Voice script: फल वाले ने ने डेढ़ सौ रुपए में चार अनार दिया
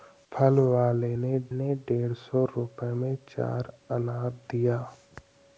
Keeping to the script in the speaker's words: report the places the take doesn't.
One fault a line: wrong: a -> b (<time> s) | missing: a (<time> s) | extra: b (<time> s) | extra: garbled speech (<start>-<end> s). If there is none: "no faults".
no faults